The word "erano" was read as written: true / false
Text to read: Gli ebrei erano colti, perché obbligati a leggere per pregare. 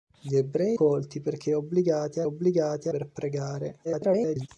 false